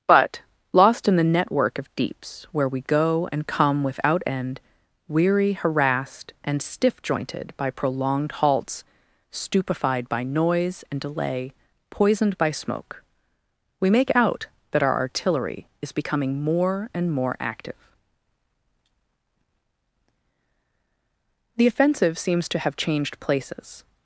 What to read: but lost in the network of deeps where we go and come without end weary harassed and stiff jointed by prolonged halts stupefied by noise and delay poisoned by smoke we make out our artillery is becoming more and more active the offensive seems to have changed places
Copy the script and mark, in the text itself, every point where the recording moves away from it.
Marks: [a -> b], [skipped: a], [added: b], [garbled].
but lost in the network of deeps where we go and come without end weary harassed and stiff jointed by prolonged halts stupefied by noise and delay poisoned by smoke we make out [added: that] our artillery is becoming more and more active the offensive seems to have changed places